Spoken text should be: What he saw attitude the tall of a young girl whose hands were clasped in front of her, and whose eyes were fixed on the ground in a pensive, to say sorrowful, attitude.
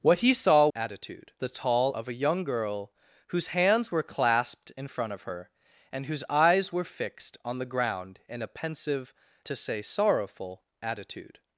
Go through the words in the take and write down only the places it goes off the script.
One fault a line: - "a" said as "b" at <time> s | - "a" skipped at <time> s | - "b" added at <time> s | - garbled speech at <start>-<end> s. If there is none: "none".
none